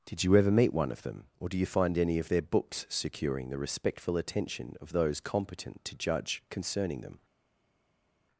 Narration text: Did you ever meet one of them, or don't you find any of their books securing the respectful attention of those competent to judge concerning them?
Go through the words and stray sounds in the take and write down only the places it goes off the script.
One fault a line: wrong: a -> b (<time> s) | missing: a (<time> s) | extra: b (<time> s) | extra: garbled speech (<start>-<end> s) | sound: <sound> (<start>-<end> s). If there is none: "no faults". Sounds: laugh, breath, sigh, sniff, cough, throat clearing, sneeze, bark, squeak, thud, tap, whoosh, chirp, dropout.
wrong: don't -> do (1.5 s)